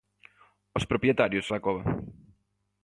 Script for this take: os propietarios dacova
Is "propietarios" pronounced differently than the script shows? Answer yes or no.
no